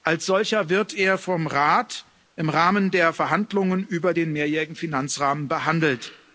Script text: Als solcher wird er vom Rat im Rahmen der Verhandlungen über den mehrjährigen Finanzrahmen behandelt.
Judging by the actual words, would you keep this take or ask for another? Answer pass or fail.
pass